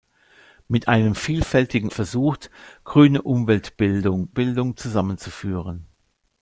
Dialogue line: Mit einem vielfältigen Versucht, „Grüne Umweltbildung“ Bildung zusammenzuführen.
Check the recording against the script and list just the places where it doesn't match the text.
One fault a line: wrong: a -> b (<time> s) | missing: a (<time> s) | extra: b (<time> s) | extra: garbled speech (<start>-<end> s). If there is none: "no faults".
no faults